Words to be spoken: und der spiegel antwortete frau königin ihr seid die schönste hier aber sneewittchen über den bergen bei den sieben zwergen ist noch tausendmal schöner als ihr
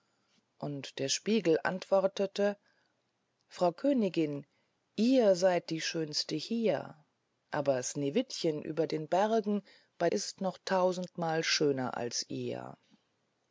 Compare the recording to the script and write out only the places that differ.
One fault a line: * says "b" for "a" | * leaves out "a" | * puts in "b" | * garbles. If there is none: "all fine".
* leaves out "den sieben zwergen"